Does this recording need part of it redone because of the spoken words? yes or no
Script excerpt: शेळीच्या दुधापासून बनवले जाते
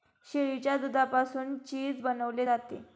yes